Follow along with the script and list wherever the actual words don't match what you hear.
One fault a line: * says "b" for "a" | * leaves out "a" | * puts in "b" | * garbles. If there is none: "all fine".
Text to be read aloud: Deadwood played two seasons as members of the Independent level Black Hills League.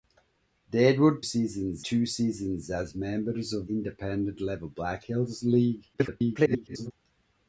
* says "seasons" for "played"
* leaves out "the"
* garbles